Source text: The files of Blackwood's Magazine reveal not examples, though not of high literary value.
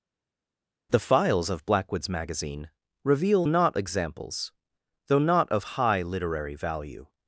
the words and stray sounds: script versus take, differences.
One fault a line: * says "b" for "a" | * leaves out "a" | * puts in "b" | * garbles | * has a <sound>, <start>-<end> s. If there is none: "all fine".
all fine